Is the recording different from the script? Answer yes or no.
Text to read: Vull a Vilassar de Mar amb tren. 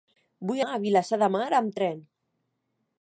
no